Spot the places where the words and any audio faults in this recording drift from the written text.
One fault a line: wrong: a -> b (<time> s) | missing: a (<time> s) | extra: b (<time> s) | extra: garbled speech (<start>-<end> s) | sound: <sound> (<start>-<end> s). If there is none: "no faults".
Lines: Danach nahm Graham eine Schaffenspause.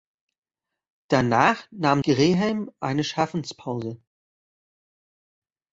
no faults